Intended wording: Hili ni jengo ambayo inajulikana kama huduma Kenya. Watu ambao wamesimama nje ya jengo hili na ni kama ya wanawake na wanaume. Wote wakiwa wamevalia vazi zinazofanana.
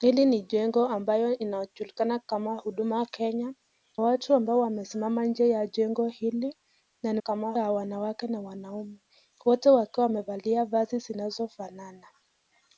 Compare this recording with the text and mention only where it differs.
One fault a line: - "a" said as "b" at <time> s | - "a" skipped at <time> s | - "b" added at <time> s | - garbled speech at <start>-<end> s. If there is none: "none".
none